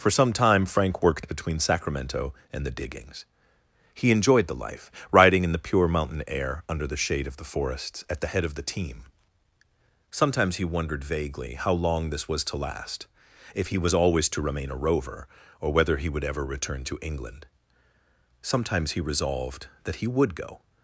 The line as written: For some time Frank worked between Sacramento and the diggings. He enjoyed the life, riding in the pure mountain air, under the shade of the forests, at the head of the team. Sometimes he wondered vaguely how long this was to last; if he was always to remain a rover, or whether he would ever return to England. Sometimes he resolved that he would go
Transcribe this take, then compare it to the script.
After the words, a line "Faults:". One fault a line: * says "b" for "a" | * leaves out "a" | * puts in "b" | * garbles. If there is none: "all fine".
For some time Frank worked between Sacramento and the diggings. He enjoyed the life, riding in the pure mountain air, under the shade of the forests, at the head of the team. Sometimes he wondered vaguely how long this was to last; if he was always to remain a rover, or whether he would ever return to England. Sometimes he resolved that he would go
Faults:
all fine